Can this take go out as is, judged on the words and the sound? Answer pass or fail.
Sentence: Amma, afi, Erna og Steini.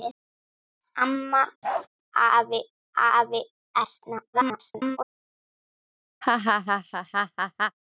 fail